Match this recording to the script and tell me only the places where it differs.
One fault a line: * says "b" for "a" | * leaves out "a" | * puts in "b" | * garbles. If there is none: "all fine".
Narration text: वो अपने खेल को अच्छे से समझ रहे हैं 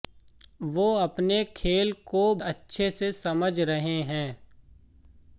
all fine